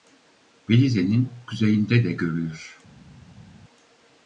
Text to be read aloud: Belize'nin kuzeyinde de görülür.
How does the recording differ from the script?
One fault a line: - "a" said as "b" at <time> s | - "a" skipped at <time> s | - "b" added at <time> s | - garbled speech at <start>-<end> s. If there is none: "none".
none